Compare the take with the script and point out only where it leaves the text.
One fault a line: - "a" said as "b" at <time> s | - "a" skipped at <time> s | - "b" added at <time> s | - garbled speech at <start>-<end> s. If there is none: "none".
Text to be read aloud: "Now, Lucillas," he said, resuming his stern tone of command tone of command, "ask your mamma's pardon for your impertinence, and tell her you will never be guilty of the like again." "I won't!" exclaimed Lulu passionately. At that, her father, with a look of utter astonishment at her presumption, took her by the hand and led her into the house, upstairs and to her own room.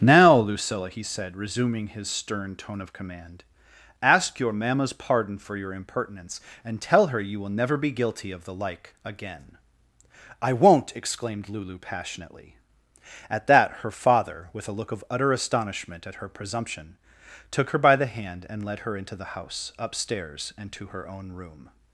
- "Lucillas" said as "Lucilla" at 0.3 s
- "tone of command" skipped at 3.4 s